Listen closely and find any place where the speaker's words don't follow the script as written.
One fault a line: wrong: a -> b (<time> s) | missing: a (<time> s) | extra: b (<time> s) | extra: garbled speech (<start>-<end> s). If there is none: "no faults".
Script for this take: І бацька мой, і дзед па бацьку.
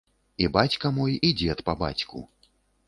no faults